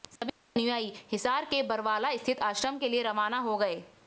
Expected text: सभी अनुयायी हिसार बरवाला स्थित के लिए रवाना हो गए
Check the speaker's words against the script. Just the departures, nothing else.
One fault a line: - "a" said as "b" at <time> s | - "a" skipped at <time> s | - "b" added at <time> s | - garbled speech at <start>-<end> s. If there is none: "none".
- "के" added at 1.4 s
- "आश्रम" added at 2.4 s